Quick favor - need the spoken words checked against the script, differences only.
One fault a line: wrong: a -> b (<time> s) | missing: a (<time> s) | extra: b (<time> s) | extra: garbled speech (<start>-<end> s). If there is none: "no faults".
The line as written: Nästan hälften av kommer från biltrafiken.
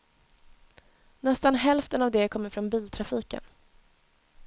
extra: det (2.1 s)